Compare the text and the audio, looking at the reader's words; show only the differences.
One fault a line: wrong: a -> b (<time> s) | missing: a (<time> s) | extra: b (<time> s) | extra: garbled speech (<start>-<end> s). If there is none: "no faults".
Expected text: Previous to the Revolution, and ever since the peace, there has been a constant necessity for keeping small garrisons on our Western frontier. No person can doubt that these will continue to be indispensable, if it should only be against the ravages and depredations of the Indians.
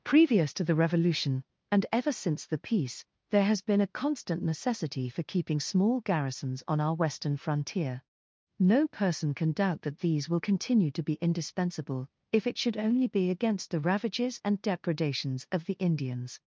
no faults